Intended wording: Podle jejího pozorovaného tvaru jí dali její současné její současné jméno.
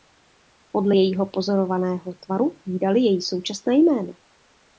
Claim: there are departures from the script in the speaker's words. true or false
true